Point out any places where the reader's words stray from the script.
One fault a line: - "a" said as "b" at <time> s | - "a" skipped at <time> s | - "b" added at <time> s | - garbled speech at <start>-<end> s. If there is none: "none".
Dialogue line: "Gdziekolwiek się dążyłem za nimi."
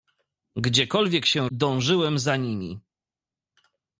none